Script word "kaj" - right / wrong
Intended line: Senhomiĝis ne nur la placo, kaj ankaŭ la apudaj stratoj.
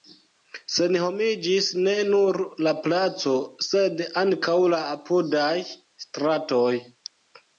wrong